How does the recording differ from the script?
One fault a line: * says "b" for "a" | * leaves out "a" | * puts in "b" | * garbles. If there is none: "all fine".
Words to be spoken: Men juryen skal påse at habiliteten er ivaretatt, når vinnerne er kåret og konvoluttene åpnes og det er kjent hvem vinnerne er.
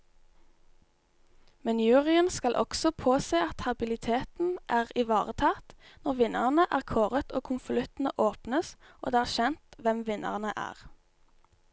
* puts in "også"